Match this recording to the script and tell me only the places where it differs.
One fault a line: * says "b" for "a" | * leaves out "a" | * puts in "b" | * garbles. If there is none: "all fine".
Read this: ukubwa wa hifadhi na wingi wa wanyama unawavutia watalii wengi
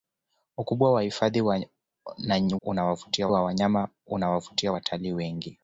* says "unawavutia" for "wingi"